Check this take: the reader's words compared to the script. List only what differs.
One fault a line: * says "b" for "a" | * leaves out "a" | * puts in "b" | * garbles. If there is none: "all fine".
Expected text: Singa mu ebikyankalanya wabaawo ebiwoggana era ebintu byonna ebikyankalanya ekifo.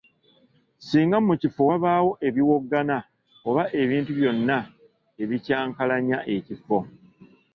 * says "kifo" for "ebikyankalanya"
* says "oba" for "era"